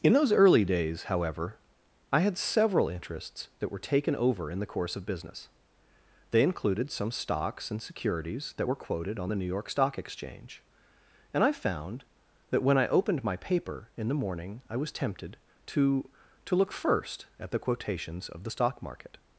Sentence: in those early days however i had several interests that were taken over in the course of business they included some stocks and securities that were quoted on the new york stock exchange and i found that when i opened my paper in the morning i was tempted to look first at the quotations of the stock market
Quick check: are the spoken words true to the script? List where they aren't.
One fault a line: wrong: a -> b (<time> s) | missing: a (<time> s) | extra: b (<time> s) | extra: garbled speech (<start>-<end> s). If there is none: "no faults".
extra: to (16.5 s)